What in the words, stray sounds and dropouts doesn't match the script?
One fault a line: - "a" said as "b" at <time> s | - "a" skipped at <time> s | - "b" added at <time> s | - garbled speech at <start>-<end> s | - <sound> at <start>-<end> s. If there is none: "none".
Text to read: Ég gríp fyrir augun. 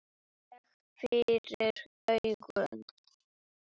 - "gríp" skipped at 0.6 s